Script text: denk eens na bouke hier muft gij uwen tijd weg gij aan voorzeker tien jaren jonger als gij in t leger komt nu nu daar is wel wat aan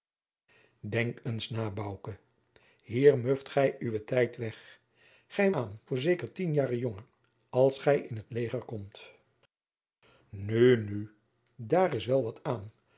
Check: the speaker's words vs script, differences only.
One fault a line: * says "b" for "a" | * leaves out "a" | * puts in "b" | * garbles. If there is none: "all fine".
all fine